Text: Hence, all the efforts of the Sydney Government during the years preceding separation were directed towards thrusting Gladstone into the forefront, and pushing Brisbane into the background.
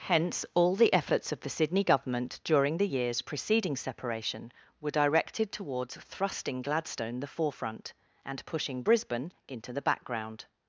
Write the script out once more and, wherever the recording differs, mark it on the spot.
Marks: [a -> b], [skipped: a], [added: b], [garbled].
Hence, all the efforts of the Sydney Government during the years preceding separation were directed towards thrusting Gladstone [skipped: into] the forefront, and pushing Brisbane into the background.